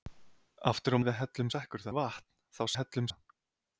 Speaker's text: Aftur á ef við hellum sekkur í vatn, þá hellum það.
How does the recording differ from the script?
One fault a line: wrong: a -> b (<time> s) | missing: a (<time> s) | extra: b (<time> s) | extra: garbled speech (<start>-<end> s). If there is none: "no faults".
no faults